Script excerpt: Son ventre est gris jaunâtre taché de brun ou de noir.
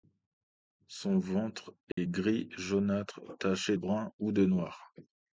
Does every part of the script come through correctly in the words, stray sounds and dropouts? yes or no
no